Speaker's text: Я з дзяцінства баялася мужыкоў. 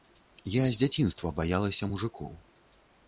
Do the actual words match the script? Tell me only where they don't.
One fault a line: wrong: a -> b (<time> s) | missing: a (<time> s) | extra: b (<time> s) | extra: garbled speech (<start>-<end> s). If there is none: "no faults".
no faults